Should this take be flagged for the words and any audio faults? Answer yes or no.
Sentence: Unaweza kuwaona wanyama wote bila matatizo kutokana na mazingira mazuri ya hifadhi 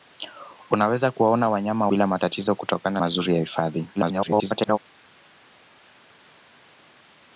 yes